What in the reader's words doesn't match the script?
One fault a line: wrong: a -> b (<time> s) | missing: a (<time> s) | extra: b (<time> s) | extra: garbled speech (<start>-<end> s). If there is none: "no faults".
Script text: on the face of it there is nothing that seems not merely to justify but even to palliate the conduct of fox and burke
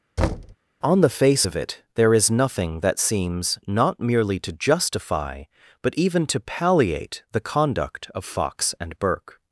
no faults